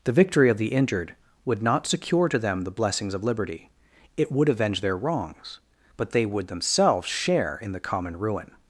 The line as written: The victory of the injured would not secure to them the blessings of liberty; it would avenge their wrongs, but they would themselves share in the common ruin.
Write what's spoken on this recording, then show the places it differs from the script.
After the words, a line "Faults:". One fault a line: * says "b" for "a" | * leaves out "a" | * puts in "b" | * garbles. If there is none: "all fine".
The victory of the injured would not secure to them the blessings of liberty; it would avenge their wrongs, but they would themselves share in the common ruin.
Faults:
all fine